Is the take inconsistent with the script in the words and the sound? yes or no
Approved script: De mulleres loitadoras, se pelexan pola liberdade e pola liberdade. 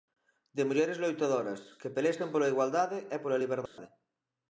yes